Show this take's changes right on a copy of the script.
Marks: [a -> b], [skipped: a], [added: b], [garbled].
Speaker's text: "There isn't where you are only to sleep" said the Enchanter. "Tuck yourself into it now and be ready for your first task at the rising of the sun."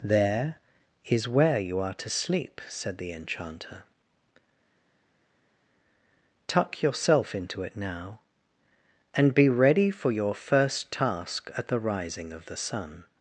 "There [isn't -> is] where you are [skipped: only] to sleep" said the Enchanter. "Tuck yourself into it now and be ready for your first task at the rising of the sun."